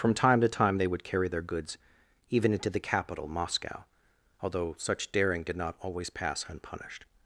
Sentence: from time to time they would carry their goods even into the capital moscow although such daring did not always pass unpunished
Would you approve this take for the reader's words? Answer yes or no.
yes